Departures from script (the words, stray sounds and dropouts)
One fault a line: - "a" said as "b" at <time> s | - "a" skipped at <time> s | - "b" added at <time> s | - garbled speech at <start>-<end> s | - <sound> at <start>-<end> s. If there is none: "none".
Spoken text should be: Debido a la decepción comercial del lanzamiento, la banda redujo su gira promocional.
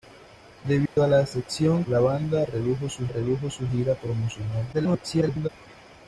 - dropout at 0.9-1.0 s
- "comercial del lanzamiento la banda" said as "la banda redujo su" at 1.9 s
- garbled speech at 4.7-5.5 s